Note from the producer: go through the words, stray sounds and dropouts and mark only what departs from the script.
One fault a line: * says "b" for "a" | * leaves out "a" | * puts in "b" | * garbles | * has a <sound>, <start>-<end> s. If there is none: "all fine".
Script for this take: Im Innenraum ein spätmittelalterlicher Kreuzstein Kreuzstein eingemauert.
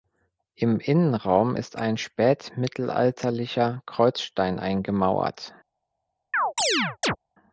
* puts in "ist"
* leaves out "Kreuzstein"
* has a chirp, 6.3-7.2 s